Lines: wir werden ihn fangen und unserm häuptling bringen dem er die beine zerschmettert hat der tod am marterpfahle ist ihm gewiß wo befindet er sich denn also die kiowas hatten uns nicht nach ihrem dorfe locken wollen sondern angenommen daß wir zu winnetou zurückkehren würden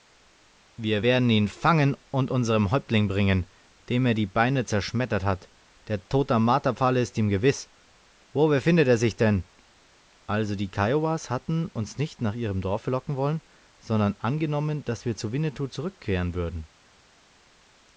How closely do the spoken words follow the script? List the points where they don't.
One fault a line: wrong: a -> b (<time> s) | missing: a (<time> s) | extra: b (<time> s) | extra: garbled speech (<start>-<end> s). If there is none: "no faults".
no faults